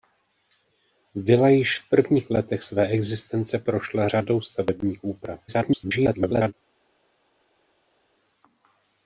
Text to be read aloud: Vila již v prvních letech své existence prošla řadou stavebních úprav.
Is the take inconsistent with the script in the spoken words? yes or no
yes